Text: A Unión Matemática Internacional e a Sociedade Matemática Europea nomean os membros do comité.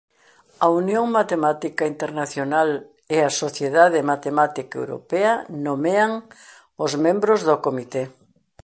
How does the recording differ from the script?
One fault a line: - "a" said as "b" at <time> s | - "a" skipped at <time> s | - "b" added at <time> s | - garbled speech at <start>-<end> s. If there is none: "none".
none